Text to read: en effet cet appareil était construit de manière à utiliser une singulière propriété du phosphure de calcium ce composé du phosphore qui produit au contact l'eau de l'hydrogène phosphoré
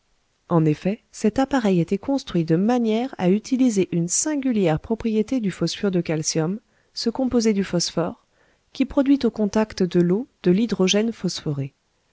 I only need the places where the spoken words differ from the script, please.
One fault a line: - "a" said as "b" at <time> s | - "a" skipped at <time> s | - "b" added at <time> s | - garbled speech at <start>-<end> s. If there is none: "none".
- "de" added at 9.8 s